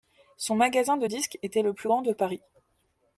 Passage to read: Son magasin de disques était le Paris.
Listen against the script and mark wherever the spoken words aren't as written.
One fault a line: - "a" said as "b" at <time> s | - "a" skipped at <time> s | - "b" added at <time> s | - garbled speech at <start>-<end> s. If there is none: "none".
- "plus grand de" added at 1.7 s